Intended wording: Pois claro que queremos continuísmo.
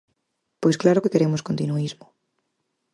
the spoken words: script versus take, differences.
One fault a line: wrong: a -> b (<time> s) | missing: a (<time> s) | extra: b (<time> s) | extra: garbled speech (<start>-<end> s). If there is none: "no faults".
no faults